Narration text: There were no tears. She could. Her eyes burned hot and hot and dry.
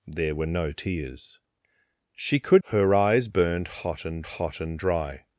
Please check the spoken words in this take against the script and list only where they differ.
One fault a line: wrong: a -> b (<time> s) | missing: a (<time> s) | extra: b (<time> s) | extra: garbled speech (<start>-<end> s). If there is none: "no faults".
no faults